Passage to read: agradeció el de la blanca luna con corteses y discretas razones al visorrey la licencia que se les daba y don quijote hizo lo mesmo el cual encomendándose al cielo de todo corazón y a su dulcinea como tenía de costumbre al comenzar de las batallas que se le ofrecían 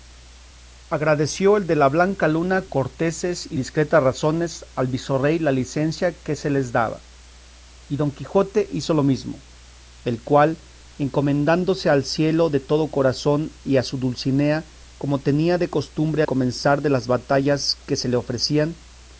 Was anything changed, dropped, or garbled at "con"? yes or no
yes